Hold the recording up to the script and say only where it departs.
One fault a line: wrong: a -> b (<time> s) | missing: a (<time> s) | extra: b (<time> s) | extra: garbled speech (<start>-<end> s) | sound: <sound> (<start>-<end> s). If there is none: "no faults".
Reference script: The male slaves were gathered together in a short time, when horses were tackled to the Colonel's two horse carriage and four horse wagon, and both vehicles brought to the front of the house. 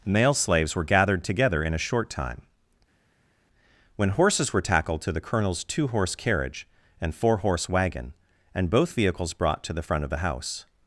missing: The (0.1 s)